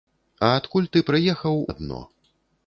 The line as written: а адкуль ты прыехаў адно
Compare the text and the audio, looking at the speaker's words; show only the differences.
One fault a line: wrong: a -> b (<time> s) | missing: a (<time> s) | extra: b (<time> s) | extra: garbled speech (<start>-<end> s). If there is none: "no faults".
no faults